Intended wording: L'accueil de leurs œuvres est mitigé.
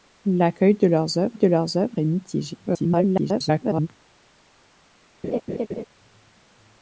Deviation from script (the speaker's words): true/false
true